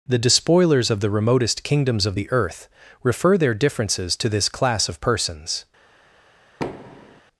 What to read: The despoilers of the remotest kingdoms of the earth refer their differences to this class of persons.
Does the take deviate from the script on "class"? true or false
false